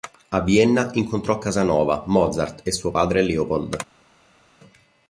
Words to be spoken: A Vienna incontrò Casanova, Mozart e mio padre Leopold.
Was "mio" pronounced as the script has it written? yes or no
no